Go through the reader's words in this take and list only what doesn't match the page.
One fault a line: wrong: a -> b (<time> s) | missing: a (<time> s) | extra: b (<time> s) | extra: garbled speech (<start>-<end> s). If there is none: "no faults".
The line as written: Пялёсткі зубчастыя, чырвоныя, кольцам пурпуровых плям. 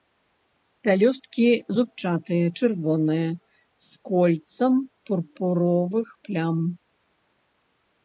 extra: з (3.9 s)